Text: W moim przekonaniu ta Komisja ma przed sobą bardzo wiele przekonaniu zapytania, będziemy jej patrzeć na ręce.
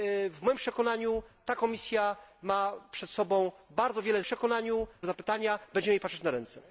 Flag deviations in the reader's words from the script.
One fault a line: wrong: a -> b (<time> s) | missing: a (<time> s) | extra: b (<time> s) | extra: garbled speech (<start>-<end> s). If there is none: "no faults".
no faults